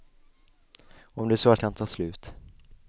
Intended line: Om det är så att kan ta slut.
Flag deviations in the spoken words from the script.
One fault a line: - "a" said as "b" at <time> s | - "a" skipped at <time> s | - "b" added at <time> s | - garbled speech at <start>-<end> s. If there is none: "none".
none